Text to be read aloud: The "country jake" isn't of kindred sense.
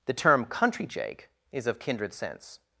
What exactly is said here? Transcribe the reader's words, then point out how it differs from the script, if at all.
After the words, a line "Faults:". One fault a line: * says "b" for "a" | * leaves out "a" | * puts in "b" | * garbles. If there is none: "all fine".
The term "country jake" is of kindred sense.
Faults:
* puts in "term"
* says "is" for "isn't"